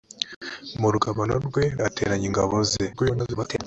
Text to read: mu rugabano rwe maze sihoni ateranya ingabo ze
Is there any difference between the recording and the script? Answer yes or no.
yes